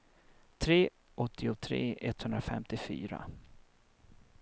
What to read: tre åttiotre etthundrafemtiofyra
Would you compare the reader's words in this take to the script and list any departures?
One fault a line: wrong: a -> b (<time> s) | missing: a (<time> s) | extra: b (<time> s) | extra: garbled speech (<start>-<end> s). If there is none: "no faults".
no faults